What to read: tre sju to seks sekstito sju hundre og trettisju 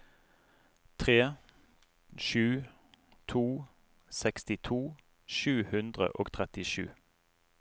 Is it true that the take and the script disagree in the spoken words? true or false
true